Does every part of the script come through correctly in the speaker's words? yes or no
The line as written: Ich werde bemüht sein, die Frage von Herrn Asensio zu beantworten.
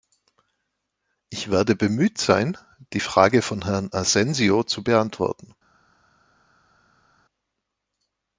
yes